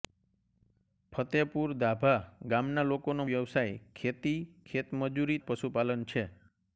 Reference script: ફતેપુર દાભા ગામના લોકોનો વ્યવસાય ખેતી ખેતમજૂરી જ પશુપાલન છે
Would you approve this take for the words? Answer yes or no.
yes